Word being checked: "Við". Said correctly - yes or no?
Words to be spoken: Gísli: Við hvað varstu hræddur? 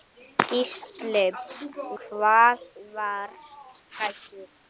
no